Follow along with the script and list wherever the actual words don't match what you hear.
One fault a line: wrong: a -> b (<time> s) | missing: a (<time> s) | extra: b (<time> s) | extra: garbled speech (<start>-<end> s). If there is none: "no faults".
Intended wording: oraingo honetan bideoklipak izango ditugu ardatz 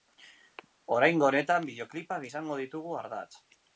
no faults